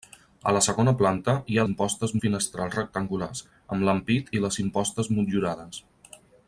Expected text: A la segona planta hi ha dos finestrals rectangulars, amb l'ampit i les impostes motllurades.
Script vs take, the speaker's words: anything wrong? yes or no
yes